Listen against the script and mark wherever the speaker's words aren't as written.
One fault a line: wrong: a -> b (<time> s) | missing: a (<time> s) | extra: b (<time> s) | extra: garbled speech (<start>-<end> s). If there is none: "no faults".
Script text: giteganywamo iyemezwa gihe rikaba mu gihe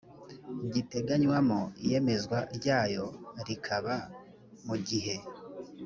wrong: gihe -> ryayo (2.6 s)